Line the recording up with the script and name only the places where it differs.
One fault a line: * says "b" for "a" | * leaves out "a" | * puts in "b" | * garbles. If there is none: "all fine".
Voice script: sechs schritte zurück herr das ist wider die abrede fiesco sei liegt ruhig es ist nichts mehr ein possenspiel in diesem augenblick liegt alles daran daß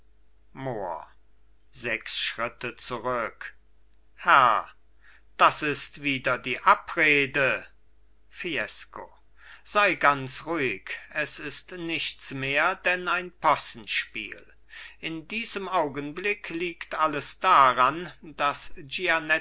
* says "ganz" for "liegt"
* puts in "denn"